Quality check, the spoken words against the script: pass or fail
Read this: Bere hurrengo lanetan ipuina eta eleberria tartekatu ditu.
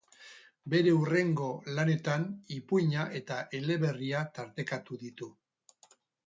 pass